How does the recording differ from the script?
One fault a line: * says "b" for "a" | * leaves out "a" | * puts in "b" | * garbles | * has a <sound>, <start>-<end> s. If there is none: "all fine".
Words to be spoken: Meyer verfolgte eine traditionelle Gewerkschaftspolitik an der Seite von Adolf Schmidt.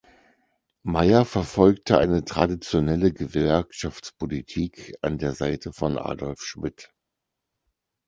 all fine